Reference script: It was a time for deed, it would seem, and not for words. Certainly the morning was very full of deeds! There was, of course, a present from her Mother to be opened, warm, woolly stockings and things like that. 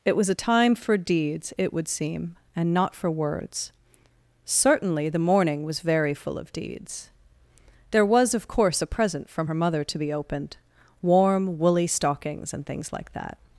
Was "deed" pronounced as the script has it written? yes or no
no